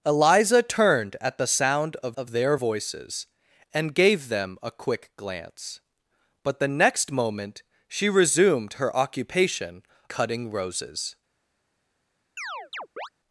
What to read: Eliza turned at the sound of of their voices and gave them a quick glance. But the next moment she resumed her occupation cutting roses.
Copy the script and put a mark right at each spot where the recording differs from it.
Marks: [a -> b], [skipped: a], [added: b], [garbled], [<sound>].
Eliza turned at the sound of of their voices and gave them a quick glance. But the next moment she resumed her occupation cutting roses. [chirp]